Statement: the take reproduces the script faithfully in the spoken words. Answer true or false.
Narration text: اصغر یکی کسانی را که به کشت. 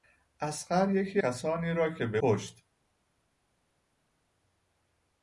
true